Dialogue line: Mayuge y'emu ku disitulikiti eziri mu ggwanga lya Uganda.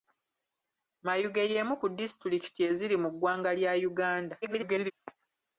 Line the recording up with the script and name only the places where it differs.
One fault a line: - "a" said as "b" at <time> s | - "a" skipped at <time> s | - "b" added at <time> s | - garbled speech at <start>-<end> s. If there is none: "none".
- garbled speech at 4.4-4.9 s